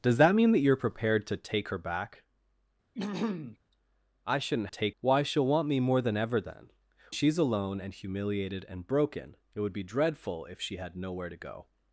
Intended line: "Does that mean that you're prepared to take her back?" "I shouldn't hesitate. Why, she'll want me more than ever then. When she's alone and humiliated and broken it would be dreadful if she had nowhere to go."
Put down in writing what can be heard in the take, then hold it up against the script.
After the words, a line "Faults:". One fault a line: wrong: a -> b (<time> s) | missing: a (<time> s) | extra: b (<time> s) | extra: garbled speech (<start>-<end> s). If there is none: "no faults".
"Does that mean that you're prepared to take her back?" "I shouldn't take. Why, she'll want me more than ever then. She's alone and humiliated and broken it would be dreadful if she had nowhere to go."
Faults:
wrong: hesitate -> take (4.7 s)
missing: When (6.7 s)